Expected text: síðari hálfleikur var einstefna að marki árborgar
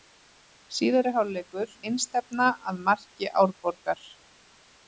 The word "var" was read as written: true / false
false